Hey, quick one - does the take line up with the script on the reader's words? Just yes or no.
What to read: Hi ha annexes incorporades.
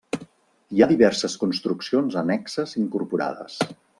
no